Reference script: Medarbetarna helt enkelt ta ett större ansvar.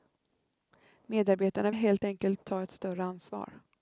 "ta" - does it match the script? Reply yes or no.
yes